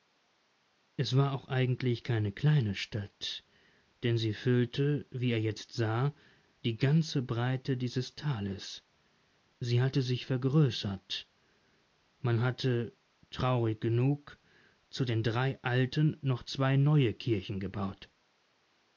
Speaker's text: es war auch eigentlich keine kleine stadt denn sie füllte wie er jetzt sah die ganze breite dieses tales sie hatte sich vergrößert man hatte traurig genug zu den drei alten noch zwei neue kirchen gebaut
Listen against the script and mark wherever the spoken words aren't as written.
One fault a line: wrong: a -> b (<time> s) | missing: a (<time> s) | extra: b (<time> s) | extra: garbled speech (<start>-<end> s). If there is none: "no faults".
no faults